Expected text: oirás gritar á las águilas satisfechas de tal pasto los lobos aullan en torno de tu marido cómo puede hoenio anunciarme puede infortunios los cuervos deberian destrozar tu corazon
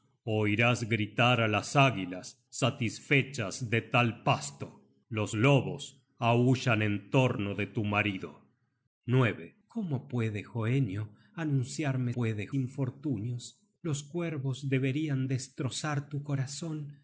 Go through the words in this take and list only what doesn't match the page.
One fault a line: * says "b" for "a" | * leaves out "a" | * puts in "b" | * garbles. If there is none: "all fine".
all fine